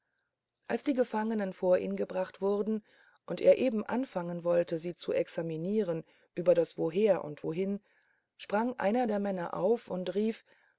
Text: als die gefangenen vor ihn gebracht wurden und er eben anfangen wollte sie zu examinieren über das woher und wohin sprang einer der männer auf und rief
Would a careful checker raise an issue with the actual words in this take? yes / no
no